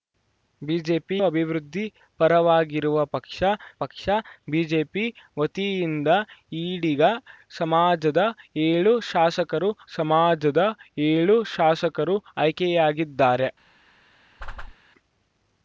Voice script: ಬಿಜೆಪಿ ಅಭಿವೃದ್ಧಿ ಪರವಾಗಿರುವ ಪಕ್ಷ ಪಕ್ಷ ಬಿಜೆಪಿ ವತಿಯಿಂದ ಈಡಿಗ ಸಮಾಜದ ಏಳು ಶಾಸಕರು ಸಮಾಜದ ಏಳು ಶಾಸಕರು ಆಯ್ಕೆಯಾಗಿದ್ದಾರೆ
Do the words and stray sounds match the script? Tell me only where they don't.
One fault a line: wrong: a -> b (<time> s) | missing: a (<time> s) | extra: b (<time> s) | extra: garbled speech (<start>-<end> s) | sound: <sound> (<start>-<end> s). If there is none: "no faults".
sound: whoosh (14.4-14.7 s)